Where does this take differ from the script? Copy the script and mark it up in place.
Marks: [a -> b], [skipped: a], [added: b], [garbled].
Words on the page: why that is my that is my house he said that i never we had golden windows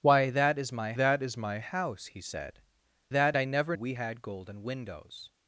why that is my that is my house he said that i never we had golden windows